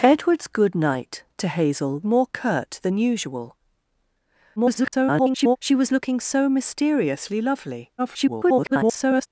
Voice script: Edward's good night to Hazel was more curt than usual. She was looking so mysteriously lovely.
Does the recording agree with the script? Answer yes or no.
no